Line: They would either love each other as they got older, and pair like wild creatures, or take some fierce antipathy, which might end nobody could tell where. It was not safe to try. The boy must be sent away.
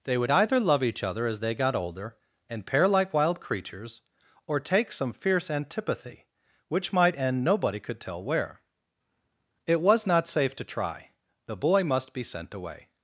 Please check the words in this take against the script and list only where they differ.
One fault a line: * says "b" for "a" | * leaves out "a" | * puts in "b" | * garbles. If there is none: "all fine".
all fine